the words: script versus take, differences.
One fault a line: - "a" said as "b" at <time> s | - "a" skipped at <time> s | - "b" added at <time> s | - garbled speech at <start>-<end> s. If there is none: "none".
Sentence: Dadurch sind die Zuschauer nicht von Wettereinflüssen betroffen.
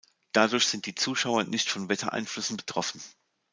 none